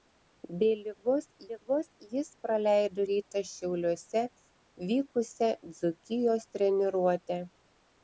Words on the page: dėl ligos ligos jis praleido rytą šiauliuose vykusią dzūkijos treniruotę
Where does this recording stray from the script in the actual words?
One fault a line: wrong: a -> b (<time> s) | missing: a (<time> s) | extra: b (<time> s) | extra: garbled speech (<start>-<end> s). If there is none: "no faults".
no faults